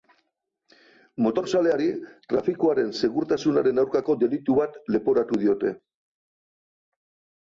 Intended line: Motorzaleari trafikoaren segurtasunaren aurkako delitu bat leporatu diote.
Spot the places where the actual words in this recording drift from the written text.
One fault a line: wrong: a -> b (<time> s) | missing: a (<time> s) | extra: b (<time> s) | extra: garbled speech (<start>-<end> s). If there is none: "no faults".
no faults